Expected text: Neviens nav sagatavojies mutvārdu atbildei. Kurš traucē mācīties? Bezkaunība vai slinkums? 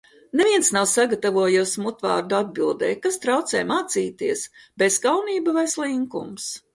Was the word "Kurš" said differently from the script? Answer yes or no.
yes